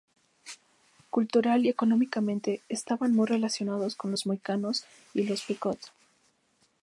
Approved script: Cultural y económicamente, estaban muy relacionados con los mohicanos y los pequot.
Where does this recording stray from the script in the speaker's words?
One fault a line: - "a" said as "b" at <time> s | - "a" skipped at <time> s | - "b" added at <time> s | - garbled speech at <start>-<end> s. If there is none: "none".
none